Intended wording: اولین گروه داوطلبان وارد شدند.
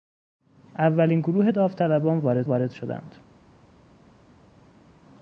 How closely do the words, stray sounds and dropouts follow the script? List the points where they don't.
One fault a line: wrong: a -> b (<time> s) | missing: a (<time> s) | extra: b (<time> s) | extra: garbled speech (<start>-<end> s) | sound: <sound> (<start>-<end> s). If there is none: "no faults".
extra: وارد (2.4 s)